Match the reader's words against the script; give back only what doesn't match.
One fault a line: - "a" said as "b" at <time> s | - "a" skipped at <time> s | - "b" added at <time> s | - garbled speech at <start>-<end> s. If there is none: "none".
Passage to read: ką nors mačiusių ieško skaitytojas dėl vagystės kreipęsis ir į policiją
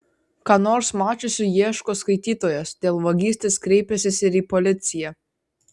none